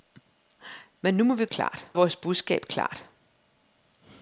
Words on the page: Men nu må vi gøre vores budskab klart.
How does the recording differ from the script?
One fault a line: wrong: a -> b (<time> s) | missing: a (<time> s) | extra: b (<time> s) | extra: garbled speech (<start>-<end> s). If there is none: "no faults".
wrong: gøre -> klart (1.5 s)